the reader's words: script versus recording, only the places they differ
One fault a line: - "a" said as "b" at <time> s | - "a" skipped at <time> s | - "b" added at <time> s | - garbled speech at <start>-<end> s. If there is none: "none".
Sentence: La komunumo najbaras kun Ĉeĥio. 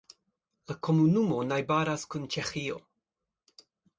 none